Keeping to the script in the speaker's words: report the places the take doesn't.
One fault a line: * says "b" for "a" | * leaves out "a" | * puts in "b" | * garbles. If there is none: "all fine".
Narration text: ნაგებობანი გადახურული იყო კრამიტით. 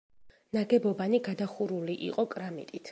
all fine